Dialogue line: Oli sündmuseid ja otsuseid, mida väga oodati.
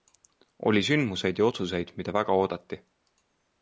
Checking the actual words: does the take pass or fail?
pass